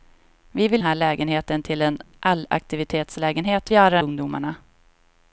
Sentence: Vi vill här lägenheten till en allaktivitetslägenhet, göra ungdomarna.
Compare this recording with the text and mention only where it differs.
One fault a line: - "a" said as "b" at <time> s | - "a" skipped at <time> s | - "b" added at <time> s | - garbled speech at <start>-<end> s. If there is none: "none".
none